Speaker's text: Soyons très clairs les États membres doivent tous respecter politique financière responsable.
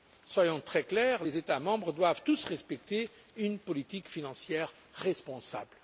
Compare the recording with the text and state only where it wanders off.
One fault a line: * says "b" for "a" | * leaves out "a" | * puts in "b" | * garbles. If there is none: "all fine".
* puts in "une"